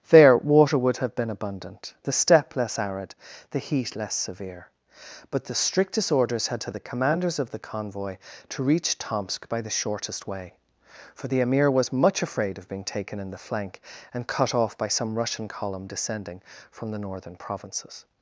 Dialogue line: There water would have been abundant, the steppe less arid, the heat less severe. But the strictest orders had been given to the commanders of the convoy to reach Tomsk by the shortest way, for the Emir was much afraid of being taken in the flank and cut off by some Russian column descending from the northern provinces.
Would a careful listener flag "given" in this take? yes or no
yes